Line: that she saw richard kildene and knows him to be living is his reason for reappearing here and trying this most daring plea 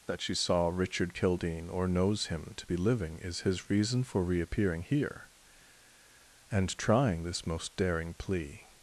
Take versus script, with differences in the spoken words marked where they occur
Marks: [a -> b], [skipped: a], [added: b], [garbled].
that she saw richard kildene [and -> or] knows him to be living is his reason for reappearing here and trying this most daring plea